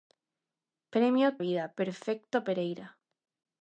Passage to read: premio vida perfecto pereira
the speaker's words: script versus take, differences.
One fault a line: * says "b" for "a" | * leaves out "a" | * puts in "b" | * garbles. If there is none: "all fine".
all fine